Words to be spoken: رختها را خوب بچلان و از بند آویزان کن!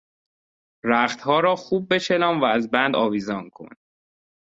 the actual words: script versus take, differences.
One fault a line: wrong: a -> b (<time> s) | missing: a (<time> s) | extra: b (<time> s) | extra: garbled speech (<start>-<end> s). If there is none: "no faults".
no faults